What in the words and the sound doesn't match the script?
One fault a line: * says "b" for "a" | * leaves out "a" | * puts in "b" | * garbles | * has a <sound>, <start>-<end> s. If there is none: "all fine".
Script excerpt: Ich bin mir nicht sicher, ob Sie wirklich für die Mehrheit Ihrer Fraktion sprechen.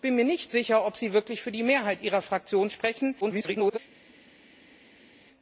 * garbles